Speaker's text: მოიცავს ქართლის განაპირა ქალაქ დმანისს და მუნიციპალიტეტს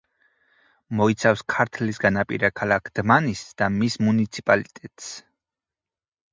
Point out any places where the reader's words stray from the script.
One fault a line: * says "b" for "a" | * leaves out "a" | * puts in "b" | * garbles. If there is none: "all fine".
* puts in "მის"